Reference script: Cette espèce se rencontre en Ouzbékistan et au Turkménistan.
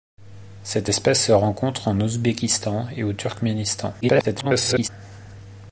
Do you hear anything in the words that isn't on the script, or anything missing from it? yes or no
yes